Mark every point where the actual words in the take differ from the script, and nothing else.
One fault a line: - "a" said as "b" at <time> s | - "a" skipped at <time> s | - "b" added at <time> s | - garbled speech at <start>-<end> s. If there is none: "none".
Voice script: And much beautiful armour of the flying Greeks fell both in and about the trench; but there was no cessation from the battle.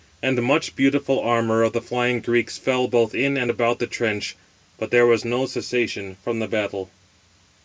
none